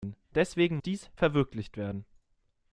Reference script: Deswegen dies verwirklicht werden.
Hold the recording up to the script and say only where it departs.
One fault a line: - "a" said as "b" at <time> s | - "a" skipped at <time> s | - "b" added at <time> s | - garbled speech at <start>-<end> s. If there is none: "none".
none